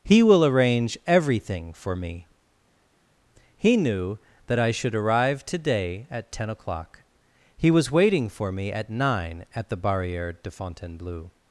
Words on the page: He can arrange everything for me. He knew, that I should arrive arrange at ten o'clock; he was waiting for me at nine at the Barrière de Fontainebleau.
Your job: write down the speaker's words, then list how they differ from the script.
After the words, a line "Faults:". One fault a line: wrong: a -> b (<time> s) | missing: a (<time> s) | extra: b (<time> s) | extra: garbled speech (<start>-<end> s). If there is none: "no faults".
He will arrange everything for me. He knew, that I should arrive today at ten o'clock; he was waiting for me at nine at the Barrière de Fontainebleau.
Faults:
wrong: can -> will (0.2 s)
wrong: arrange -> today (5.5 s)